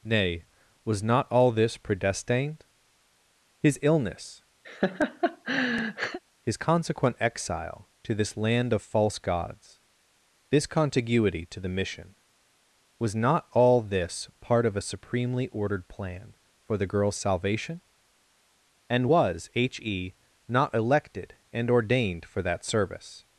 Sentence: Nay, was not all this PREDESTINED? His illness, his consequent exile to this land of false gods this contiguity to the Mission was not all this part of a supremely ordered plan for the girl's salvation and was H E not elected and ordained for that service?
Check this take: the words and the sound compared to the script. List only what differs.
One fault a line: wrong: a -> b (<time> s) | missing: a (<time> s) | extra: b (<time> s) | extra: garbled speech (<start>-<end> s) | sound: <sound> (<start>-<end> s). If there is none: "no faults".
sound: laugh (4.6-6.2 s)